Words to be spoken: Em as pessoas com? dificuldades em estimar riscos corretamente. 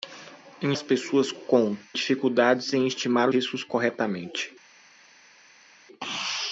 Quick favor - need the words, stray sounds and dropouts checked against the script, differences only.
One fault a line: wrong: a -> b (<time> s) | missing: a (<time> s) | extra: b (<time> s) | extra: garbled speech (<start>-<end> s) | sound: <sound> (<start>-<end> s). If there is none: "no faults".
no faults